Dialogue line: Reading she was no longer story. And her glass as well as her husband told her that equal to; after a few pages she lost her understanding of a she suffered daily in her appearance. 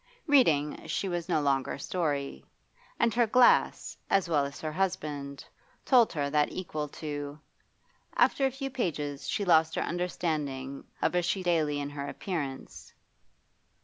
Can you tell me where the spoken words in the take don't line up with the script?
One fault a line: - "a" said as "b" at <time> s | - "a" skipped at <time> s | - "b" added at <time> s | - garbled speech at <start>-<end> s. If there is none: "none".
- "suffered" skipped at 11.4 s